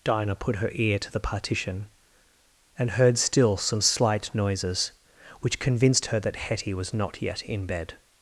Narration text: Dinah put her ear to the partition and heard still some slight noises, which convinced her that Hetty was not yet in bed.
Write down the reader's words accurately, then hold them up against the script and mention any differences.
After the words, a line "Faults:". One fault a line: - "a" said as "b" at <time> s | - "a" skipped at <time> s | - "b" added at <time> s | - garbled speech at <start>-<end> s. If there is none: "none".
Dinah put her ear to the partition and heard still some slight noises, which convinced her that Hetty was not yet in bed.
Faults:
none